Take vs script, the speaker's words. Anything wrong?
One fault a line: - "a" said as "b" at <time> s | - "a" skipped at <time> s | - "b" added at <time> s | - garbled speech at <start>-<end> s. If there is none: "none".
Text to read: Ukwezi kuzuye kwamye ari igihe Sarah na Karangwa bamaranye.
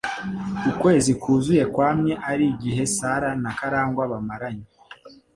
none